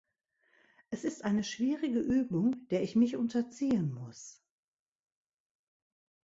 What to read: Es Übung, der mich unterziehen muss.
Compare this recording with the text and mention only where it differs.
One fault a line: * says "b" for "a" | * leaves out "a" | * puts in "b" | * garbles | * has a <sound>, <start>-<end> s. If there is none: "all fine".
* puts in "ist eine schwierige"
* puts in "ich"